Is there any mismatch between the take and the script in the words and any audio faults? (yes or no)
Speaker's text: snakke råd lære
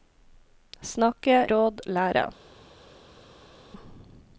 no